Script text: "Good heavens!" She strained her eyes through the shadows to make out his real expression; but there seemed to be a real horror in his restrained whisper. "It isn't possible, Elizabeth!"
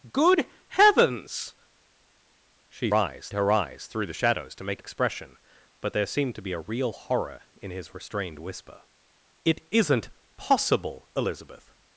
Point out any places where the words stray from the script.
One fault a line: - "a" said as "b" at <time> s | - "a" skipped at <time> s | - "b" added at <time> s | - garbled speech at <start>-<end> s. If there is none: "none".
- "strained" said as "eyes" at 2.9 s
- "out his real" skipped at 4.8 s